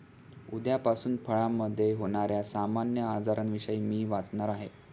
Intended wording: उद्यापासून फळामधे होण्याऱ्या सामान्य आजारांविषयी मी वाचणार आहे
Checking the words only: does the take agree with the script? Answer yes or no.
yes